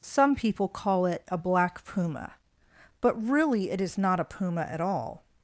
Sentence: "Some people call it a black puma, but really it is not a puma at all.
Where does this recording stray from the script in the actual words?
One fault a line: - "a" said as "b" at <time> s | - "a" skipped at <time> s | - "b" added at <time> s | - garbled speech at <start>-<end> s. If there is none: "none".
none